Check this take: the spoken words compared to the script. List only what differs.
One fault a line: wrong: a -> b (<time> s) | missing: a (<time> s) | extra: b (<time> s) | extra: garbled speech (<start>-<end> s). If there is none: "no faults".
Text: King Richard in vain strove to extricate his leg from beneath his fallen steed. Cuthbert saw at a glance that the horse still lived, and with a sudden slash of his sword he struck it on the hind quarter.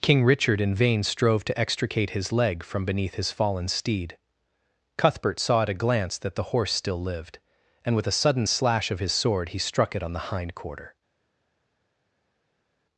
no faults